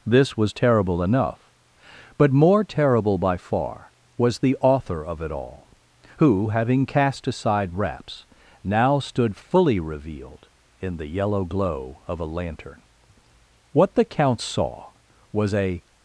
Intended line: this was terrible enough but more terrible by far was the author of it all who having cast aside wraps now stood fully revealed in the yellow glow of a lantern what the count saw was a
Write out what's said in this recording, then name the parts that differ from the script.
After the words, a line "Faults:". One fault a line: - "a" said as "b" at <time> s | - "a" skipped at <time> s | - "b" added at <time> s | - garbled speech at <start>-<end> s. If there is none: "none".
this was terrible enough but more terrible by far was the author of it all who having cast aside wraps now stood fully revealed in the yellow glow of a lantern what the count saw was a
Faults:
none